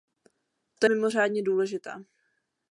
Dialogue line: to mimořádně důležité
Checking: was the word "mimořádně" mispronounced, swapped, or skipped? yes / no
no